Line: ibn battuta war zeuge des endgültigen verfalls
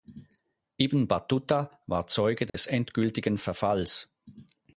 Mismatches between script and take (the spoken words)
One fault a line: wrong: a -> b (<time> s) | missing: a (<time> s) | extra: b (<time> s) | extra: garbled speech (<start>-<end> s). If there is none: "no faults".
no faults